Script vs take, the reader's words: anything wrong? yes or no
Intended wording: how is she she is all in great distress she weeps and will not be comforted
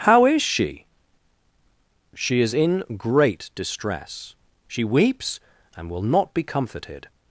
yes